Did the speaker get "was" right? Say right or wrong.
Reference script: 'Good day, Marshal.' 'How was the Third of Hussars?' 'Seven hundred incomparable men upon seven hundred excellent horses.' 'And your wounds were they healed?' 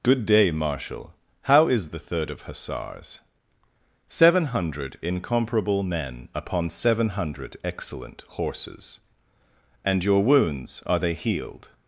wrong